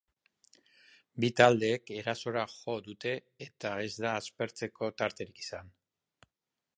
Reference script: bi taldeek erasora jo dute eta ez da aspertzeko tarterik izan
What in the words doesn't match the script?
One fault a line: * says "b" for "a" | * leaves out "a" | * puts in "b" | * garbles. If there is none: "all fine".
all fine